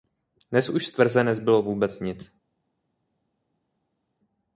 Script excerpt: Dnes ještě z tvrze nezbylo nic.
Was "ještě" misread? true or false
true